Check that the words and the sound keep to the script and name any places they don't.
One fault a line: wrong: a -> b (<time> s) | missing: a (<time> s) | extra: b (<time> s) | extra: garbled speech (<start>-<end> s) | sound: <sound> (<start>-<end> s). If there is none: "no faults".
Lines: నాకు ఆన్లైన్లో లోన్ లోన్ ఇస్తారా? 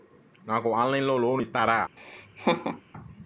missing: లోన్ (1.4 s)
sound: laugh (2.0-2.8 s)